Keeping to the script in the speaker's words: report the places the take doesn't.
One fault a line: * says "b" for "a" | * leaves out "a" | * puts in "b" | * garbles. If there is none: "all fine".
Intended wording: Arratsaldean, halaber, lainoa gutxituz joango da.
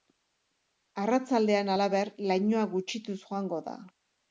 all fine